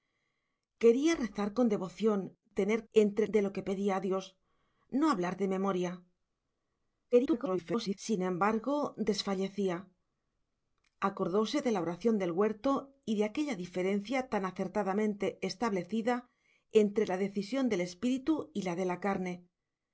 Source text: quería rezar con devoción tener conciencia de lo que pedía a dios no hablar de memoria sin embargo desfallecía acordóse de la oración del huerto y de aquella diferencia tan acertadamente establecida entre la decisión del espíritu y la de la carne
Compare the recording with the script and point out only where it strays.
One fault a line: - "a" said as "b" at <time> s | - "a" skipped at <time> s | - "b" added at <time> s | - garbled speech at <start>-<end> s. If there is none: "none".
- "conciencia" said as "entre" at 2.9 s
- garbled speech at 7.1-8.0 s